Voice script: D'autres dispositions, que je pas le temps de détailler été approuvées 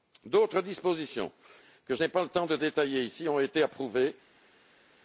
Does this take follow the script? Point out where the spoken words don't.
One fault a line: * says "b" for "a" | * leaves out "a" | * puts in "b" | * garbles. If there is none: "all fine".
* puts in "n'ai"
* puts in "ici ont"